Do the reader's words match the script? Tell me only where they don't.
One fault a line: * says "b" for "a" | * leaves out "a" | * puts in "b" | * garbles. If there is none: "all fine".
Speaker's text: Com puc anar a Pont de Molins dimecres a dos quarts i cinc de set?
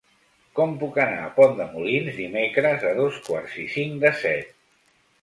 all fine